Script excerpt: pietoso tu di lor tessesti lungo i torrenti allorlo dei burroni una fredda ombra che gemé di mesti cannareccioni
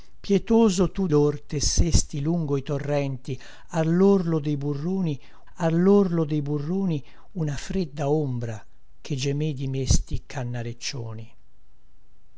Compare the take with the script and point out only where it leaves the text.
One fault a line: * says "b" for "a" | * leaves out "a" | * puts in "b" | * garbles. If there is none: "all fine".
* leaves out "di"
* puts in "allorlo dei burroni"